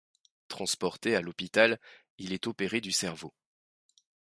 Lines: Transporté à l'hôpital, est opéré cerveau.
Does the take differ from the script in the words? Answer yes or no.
yes